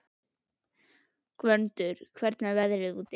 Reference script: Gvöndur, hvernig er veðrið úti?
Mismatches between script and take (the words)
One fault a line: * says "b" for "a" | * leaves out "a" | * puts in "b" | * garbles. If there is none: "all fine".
all fine